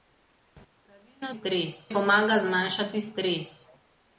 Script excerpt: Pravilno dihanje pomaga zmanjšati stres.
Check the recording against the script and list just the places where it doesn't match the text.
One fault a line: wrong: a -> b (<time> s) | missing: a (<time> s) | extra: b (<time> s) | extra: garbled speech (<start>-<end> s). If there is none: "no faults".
wrong: dihanje -> stres (1.3 s)